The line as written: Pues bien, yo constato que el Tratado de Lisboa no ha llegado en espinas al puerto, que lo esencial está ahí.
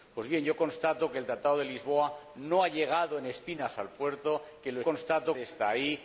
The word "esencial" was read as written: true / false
false